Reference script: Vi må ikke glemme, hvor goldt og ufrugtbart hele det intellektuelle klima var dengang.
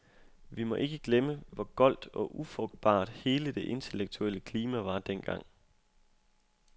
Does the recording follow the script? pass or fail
pass